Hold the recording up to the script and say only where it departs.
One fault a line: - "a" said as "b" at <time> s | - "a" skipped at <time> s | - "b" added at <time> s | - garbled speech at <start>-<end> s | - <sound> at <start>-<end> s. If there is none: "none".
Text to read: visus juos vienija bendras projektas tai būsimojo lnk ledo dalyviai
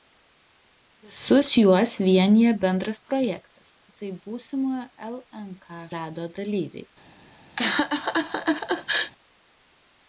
- laugh at 7.6-9.1 s